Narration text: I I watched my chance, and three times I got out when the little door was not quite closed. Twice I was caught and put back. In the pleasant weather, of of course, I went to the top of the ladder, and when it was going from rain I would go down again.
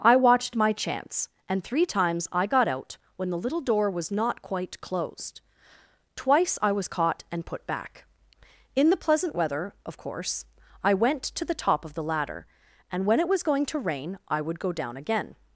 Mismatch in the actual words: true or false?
true